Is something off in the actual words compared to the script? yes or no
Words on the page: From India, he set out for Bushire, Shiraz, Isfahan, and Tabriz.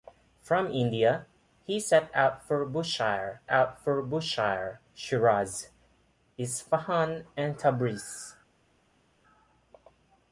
yes